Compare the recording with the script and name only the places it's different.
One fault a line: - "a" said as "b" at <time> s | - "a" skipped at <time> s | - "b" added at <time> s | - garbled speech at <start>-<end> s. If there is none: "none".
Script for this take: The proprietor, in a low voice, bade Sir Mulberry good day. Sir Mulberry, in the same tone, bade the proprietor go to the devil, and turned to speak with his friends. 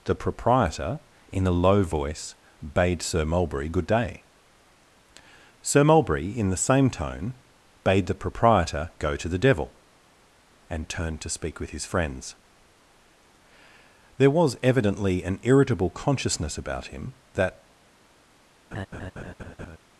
- "There was evidently an irritable consciousness about him that" added at 14.2 s